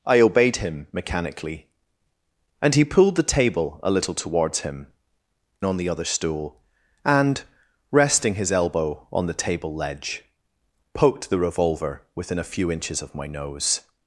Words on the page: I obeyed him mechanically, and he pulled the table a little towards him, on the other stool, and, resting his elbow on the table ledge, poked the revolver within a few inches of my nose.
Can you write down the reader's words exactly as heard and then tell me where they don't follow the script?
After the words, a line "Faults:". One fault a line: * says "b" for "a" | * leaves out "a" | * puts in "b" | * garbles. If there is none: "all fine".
I obeyed him mechanically, and he pulled the table a little towards him, on the other stool, and, resting his elbow on the table ledge, poked the revolver within a few inches of my nose.
Faults:
all fine